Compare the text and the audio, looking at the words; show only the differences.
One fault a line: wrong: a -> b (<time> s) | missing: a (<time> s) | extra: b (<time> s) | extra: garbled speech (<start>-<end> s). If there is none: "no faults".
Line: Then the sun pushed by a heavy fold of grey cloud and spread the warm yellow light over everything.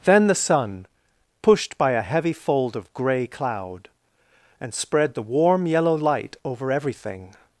no faults